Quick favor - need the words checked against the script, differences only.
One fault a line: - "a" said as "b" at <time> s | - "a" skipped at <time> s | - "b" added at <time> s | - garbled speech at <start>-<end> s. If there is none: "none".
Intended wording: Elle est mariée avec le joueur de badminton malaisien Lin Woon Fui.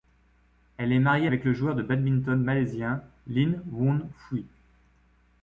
none